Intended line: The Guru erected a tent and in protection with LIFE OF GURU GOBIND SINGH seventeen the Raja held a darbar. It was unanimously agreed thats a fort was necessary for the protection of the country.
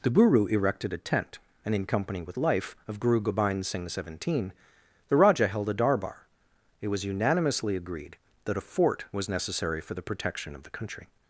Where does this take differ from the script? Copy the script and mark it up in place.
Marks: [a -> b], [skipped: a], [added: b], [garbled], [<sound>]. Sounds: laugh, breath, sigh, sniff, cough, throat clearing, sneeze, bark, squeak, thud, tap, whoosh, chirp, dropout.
The Guru erected a tent and in [protection -> company] with LIFE OF GURU GOBIND SINGH seventeen the Raja held a darbar. It was unanimously agreed [thats -> that] a fort was necessary for the protection of the country.